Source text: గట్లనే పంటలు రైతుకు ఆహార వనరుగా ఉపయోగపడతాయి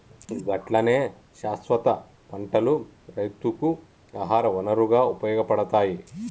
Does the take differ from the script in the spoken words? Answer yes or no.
yes